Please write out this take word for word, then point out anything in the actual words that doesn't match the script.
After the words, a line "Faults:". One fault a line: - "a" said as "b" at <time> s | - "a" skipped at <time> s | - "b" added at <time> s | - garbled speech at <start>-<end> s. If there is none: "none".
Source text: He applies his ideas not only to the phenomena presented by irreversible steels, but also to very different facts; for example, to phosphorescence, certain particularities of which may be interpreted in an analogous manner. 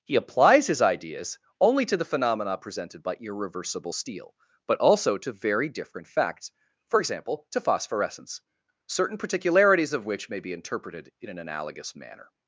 He applies his ideas only to the phenomena presented by irreversible steel, but also to very different facts; for example, to phosphorescence, certain particularities of which may be interpreted in an analogous manner.
Faults:
- "not" skipped at 1.4 s
- "steels" said as "steel" at 3.9 s